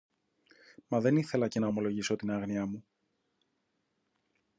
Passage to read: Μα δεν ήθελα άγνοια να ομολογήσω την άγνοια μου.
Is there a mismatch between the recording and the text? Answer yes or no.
yes